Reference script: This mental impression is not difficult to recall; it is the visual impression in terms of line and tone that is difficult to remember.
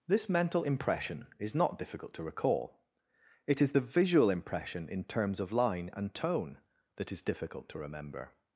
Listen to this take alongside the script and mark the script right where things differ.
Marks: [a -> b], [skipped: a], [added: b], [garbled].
This mental impression is not difficult to recall; it is the visual impression in terms of line and tone that is difficult to remember.